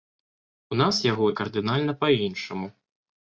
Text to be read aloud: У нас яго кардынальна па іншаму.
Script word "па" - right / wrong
right